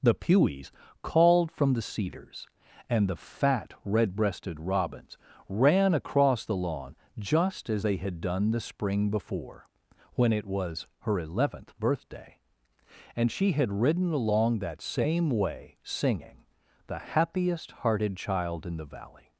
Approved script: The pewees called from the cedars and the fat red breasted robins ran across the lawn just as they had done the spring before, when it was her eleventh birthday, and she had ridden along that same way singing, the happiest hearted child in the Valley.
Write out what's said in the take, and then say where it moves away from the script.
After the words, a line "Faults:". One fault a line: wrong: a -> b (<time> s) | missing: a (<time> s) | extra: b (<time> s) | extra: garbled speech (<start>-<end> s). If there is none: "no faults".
The pewees called from the cedars and the fat red breasted robins ran across the lawn just as they had done the spring before, when it was her eleventh birthday, and she had ridden along that same way singing, the happiest hearted child in the Valley.
Faults:
no faults